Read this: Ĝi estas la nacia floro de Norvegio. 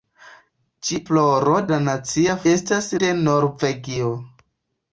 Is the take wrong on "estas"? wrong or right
wrong